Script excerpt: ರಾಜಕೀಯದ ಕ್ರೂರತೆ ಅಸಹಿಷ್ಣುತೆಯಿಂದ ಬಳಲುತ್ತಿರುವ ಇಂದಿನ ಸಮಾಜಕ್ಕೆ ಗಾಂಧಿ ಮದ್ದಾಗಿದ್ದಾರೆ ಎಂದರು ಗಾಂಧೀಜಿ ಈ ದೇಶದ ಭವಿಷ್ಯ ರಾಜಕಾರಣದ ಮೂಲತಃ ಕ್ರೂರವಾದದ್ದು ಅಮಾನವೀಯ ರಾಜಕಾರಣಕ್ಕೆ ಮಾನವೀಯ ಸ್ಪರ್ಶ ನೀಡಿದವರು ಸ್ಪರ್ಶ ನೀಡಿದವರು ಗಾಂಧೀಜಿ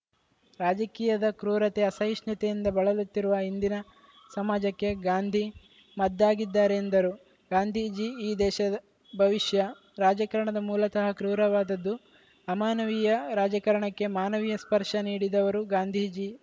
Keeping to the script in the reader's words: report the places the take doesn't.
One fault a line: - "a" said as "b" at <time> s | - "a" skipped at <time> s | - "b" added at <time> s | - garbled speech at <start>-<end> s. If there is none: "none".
- "ಸ್ಪರ್ಶ ನೀಡಿದವರು" skipped at 15.6 s